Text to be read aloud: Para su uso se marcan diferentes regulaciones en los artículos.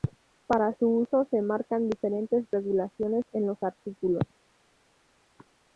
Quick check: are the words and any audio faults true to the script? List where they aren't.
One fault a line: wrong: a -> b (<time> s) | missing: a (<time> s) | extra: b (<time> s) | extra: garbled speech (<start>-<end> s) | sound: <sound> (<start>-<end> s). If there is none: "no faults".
no faults